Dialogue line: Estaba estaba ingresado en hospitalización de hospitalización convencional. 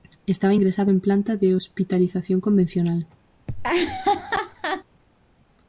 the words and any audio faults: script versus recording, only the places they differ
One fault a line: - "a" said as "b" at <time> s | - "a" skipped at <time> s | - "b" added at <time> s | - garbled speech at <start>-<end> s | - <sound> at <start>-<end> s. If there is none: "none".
- "estaba" skipped at 0.6 s
- "hospitalización" said as "planta" at 1.0 s
- laugh at 3.5-4.8 s